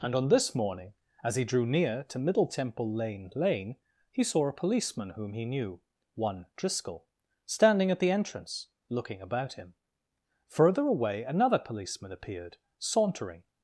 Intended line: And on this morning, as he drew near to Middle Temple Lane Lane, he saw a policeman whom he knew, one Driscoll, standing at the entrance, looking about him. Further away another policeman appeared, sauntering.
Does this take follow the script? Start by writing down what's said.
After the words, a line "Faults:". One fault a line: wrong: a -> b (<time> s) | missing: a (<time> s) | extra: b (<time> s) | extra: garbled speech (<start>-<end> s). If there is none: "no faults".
And on this morning, as he drew near to Middle Temple Lane Lane, he saw a policeman whom he knew, one Driscoll, standing at the entrance, looking about him. Further away another policeman appeared, sauntering.
Faults:
no faults